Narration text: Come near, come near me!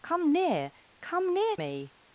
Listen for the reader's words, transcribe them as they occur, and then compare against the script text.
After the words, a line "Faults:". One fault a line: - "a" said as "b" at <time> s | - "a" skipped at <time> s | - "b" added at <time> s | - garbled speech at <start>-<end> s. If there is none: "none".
Come near, come near me!
Faults:
none